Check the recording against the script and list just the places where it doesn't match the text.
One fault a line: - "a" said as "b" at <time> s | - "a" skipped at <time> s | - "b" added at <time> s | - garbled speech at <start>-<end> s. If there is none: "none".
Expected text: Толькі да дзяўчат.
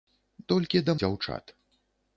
none